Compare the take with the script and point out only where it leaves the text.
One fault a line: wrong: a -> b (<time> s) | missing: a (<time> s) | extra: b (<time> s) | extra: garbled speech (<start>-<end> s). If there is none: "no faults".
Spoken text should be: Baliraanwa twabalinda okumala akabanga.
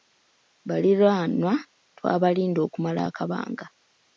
no faults